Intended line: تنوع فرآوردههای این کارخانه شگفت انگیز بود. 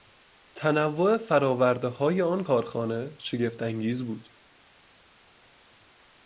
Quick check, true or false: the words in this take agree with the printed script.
false